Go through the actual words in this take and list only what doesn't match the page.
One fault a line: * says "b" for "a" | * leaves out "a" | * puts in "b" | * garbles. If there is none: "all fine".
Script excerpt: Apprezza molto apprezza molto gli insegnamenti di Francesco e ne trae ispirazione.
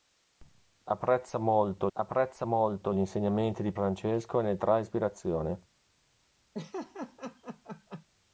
all fine